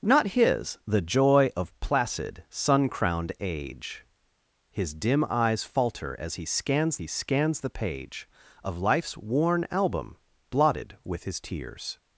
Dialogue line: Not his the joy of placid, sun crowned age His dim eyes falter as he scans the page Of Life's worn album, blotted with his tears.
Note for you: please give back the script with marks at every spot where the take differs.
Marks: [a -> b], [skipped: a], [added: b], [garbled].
Not his the joy of placid, sun crowned age His dim eyes falter as he scans [added: he scans] the page Of Life's worn album, blotted with his tears.